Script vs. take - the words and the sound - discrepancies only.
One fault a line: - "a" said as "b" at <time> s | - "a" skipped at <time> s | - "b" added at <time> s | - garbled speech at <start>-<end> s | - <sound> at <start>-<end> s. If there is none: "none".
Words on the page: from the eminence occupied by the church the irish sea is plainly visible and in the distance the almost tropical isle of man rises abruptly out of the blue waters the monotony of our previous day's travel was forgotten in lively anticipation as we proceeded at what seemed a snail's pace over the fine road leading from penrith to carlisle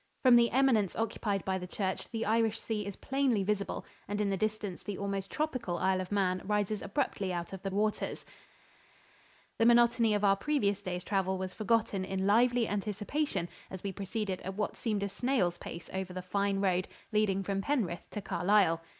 - "blue" skipped at 7.7 s